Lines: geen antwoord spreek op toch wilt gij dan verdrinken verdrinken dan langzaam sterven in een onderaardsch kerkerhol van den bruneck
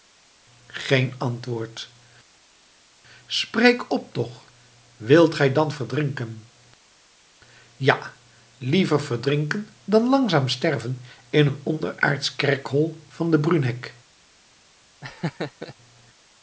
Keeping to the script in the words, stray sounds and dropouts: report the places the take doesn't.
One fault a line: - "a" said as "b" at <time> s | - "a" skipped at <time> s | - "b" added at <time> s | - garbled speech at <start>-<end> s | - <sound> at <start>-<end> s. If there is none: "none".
- "ja liever" added at 7.8 s
- laugh at 15.0-15.7 s